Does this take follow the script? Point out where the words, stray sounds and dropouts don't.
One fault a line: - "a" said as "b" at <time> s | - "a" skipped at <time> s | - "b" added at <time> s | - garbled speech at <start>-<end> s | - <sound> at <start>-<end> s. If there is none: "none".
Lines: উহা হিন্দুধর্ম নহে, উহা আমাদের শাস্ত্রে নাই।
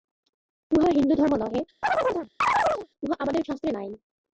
- chirp at 1.8-2.9 s